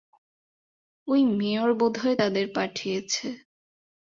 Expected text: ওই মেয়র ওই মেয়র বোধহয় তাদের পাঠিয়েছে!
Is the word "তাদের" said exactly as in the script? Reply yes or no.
yes